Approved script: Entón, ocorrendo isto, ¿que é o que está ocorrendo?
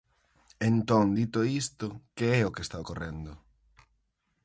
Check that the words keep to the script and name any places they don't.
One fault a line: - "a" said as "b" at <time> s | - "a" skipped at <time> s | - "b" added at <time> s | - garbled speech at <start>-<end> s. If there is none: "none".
- "ocorrendo" said as "dito" at 1.2 s